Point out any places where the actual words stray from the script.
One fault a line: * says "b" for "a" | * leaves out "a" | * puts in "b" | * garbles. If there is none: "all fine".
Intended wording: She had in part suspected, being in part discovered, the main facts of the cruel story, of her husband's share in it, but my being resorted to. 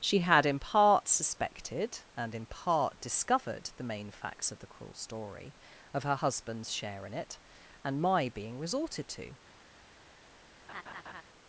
* says "and" for "being"
* says "and" for "but"